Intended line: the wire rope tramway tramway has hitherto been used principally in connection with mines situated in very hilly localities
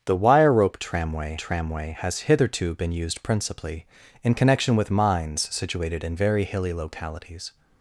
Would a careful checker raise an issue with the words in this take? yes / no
no